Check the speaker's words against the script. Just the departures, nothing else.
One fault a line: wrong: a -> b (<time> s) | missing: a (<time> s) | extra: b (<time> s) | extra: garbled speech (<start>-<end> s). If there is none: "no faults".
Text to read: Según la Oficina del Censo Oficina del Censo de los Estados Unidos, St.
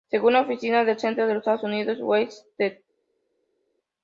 missing: Oficina del Censo (1.3 s)
extra: West (2.0 s)